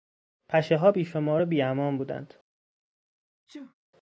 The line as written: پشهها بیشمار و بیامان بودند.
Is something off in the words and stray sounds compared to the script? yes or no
yes